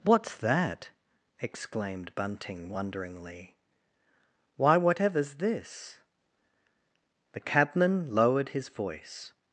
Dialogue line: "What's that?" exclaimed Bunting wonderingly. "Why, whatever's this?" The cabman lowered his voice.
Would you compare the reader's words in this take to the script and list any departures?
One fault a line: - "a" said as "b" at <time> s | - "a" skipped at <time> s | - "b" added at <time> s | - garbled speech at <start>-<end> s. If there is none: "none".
none